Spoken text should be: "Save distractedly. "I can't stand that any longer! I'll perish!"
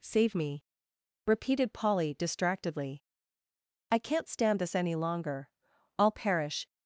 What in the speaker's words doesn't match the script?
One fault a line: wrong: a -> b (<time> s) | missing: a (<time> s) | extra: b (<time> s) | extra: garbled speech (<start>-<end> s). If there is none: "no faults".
extra: me repeated Polly (0.3 s)
wrong: that -> this (4.6 s)